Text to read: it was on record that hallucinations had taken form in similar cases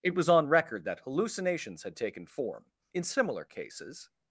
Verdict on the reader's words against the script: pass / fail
pass